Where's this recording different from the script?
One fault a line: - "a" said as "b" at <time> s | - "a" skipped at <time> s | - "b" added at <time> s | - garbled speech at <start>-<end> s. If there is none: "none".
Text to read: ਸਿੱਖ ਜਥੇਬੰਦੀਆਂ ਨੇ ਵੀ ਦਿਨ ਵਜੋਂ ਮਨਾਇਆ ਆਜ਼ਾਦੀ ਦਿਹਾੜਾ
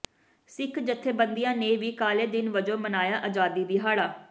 - "ਕਾਲੇ" added at 1.9 s